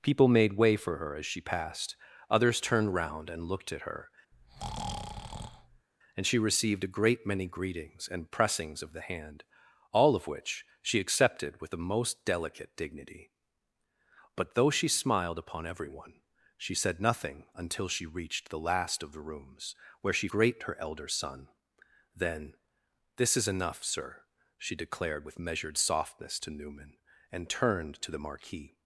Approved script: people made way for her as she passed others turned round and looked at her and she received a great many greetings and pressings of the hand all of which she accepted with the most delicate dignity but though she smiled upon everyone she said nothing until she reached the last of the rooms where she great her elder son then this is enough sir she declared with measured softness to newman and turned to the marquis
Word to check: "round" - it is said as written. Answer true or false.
true